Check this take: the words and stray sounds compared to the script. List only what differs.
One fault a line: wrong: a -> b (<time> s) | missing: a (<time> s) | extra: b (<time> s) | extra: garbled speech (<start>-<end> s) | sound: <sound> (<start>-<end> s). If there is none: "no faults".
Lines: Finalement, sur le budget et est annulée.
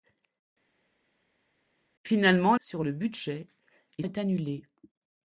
no faults